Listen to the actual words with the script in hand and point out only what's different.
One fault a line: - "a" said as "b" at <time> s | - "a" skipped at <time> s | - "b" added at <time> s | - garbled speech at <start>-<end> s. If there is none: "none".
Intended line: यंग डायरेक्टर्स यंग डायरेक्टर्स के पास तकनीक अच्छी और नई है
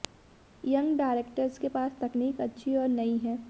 - "यंग डायरेक्टर्स" skipped at 1.6 s